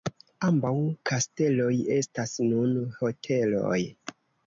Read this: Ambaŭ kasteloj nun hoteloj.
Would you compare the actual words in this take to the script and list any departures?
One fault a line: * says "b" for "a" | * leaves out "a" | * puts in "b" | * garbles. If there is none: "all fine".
* puts in "estas"